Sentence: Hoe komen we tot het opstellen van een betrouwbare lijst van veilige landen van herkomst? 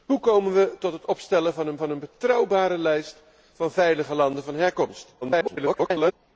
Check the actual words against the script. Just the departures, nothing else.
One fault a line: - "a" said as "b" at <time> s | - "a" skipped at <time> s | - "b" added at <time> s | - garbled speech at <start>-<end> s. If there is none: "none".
- "van een" added at 1.8 s
- garbled speech at 5.2-6.1 s